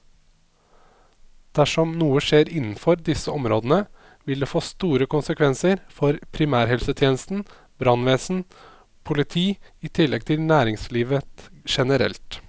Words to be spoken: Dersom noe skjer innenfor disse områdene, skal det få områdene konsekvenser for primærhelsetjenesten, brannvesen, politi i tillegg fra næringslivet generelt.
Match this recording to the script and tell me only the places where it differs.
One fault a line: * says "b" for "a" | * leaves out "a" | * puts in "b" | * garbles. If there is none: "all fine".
* says "vil" for "skal"
* says "store" for "områdene"
* says "til" for "fra"